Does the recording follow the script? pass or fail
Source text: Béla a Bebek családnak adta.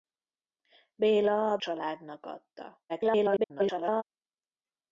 fail